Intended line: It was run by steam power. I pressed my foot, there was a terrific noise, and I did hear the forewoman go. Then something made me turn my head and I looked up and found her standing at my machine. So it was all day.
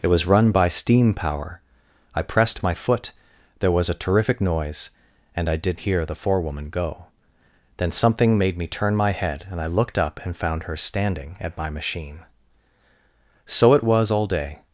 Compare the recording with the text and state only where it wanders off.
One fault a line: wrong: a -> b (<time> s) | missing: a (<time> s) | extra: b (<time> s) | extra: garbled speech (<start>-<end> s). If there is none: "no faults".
no faults